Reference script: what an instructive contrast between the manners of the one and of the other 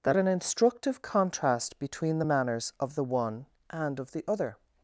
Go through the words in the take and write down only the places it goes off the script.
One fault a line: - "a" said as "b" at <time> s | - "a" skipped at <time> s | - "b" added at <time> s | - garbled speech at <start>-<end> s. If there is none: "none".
- "what" said as "that" at 0.0 s